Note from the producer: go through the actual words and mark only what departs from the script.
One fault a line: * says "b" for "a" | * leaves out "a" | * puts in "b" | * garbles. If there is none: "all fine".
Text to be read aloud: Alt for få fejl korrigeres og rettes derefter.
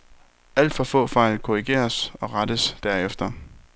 all fine